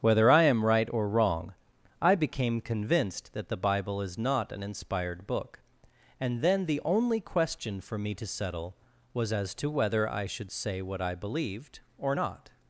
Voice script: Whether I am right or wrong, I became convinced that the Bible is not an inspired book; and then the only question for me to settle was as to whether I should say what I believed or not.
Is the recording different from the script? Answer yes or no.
no